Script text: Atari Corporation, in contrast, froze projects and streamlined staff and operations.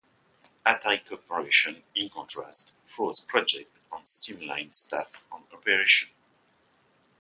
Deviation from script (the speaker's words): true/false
false